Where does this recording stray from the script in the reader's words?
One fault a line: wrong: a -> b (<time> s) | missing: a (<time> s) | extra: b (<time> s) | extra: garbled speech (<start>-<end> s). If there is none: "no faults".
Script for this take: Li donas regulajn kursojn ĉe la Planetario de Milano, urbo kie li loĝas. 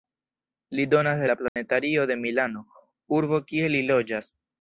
missing: regulajn kursojn ĉe (1.2 s)